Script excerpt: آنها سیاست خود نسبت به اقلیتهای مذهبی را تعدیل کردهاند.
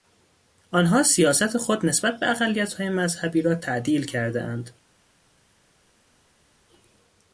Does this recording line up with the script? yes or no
yes